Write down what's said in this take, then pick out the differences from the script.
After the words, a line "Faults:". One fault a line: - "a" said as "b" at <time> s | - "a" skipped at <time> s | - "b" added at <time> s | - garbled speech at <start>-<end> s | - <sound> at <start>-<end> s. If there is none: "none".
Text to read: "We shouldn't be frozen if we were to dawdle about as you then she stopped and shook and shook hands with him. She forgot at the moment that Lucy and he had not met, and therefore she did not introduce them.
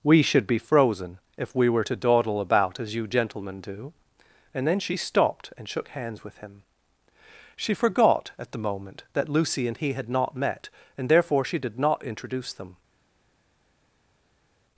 "We should be frozen if we were to dawdle about as you gentlemen do," and then she stopped and shook hands with him. She forgot at the moment that Lucy and he had not met, and therefore she did not introduce them.
Faults:
- "shouldn't" said as "should" at 0.2 s
- "gentlemen do and" added at 3.1 s
- "and shook" skipped at 5.9 s